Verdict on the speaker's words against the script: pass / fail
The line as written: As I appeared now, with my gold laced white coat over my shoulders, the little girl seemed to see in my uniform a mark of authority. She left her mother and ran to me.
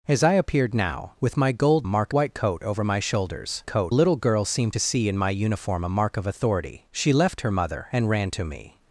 fail